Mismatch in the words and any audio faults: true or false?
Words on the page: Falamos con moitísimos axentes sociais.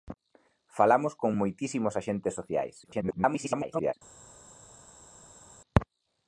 true